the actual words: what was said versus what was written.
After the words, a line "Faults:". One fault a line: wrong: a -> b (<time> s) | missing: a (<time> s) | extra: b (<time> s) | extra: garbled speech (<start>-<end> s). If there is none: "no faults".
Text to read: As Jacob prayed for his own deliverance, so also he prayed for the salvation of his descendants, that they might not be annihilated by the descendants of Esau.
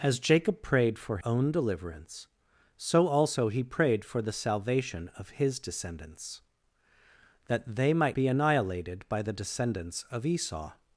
As Jacob prayed for own deliverance, so also he prayed for the salvation of his descendants, that they might be annihilated by the descendants of Esau.
Faults:
missing: his (1.2 s)
missing: not (8.2 s)